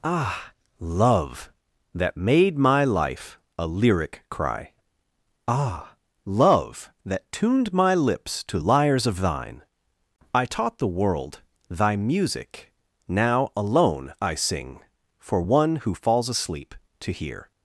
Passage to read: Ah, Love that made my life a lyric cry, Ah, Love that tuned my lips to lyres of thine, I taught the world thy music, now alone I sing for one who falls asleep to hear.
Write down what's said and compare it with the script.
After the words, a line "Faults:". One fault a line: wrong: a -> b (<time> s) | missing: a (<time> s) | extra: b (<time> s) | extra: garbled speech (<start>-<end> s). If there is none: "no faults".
Ah, Love that made my life a lyric cry, Ah, Love that tuned my lips to lyres of thine, I taught the world thy music, now alone I sing for one who falls asleep to hear.
Faults:
no faults